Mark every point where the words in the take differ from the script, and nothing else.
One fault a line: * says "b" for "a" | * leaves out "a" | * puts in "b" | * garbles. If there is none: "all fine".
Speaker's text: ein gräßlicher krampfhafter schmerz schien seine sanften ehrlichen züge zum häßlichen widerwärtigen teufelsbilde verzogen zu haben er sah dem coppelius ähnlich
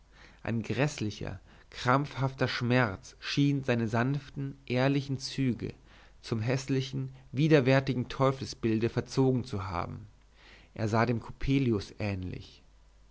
all fine